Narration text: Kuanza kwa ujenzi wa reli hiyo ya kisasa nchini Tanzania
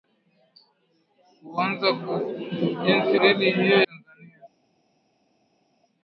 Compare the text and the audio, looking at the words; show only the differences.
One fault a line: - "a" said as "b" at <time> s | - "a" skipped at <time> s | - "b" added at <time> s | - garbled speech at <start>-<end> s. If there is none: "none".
- "wa" skipped at 3.2 s
- "ya kisasa nchini" skipped at 3.8 s